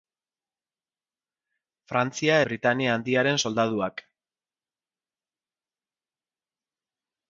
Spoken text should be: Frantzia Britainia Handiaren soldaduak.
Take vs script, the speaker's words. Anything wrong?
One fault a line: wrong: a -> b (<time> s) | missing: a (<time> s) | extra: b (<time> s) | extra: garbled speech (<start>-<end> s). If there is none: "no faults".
no faults